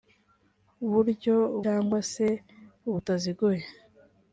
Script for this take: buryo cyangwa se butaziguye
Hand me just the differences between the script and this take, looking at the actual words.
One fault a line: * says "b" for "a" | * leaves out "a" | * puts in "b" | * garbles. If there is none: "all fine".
all fine